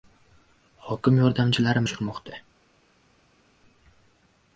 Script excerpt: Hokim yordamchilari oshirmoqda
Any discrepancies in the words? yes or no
no